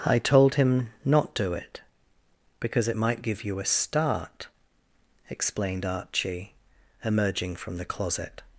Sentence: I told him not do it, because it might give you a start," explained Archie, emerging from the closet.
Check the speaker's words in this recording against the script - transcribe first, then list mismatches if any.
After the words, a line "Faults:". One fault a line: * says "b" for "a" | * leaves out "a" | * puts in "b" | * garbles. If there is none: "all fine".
I told him not do it, because it might give you a start," explained Archie, emerging from the closet.
Faults:
all fine